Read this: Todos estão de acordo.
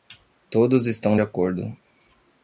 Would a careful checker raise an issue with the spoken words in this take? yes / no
no